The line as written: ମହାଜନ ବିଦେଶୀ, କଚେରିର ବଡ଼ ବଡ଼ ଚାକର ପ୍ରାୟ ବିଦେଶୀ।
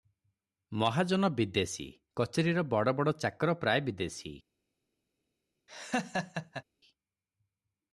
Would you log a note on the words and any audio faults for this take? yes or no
yes